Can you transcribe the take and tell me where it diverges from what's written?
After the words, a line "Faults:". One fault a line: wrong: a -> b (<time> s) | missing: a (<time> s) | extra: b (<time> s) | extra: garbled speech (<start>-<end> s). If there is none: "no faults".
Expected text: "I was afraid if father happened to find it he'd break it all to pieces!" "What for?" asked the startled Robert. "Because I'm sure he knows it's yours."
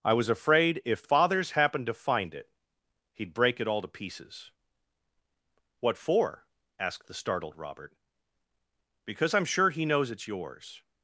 "I was afraid if fathers happened to find it he'd break it all to pieces!" "What for?" asked the startled Robert. "Because I'm sure he knows it's yours."
Faults:
wrong: father -> fathers (1.0 s)